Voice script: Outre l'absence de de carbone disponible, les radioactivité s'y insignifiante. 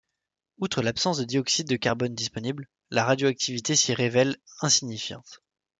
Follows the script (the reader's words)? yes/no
no